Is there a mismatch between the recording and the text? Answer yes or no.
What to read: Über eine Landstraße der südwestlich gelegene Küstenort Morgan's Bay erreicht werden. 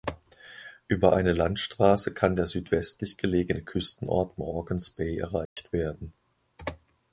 yes